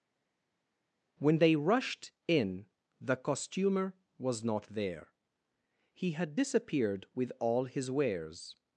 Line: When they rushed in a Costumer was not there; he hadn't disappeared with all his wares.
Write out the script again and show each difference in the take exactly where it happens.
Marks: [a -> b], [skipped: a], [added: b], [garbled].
When they rushed in [a -> the] Costumer was not there; he [hadn't -> had] disappeared with all his wares.